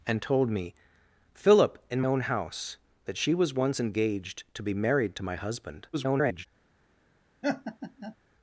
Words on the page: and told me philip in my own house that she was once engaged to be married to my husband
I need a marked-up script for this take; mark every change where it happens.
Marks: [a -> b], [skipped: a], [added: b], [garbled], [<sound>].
and told me philip in [skipped: my] own house that she was once engaged to be married to my husband [garbled] [laugh]